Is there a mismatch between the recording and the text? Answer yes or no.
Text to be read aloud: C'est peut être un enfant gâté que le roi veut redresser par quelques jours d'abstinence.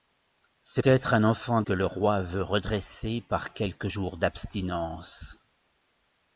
yes